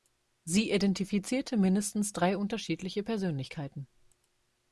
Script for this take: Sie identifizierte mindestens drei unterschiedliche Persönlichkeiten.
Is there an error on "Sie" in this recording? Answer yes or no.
no